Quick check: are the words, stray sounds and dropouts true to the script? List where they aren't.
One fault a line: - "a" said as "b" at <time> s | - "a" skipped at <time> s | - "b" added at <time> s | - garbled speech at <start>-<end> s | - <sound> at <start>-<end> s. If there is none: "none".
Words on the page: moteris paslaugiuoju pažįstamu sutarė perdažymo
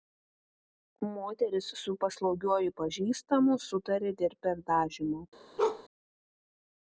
- "su" added at 1.8 s
- "dėl" added at 4.2 s
- bark at 5.6-5.8 s